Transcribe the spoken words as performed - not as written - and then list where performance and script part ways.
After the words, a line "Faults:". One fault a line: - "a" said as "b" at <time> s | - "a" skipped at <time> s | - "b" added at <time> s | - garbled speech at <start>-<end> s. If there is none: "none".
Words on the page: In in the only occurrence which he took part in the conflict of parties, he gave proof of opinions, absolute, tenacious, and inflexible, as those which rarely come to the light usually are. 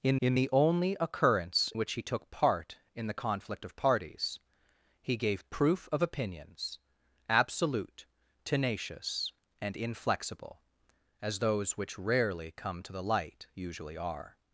In in the only occurrence which he took part in the conflict of parties, he gave proof of opinions, absolute, tenacious, and inflexible, as those which rarely come to the light usually are.
Faults:
none